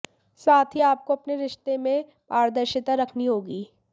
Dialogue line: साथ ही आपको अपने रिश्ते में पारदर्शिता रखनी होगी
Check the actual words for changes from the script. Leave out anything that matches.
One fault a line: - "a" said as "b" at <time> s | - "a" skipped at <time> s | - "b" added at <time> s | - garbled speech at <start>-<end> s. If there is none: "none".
none